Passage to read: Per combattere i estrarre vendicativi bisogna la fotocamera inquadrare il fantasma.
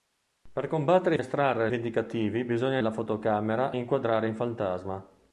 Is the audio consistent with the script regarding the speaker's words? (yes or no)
yes